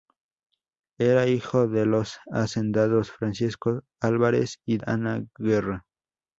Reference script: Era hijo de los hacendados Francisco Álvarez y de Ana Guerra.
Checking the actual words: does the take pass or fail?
fail